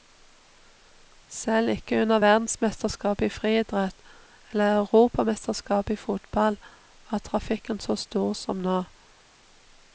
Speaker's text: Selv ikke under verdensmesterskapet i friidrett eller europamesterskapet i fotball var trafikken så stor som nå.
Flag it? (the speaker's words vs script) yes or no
no